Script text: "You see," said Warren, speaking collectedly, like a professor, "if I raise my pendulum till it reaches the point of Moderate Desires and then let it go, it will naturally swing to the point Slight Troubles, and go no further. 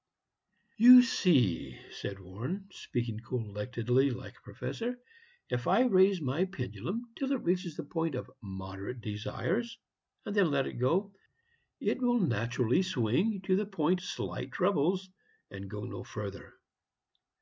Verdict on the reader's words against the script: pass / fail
pass